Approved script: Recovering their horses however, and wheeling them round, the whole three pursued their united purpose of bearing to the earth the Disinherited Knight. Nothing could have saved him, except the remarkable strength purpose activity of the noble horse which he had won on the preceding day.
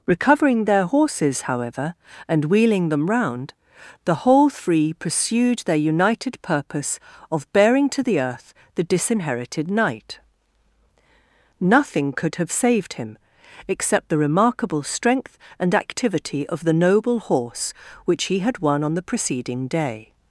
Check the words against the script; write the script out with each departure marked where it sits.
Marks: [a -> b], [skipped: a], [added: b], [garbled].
Recovering their horses however, and wheeling them round, the whole three pursued their united purpose of bearing to the earth the Disinherited Knight. Nothing could have saved him, except the remarkable strength [purpose -> and] activity of the noble horse which he had won on the preceding day.